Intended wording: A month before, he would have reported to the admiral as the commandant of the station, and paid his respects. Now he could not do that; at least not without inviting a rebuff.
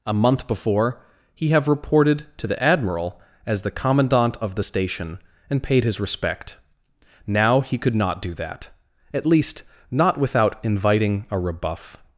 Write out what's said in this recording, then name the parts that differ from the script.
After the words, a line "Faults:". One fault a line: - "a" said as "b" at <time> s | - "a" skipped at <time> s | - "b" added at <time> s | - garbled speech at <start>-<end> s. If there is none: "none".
A month before, he have reported to the admiral as the commandant of the station, and paid his respect. Now he could not do that; at least not without inviting a rebuff.
Faults:
- "would" skipped at 1.5 s
- "respects" said as "respect" at 6.0 s